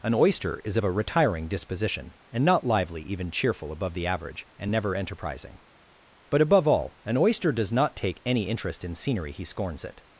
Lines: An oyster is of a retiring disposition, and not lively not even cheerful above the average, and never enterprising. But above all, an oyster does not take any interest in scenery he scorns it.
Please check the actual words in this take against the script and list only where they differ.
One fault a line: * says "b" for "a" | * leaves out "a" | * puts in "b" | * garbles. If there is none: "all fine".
* leaves out "not"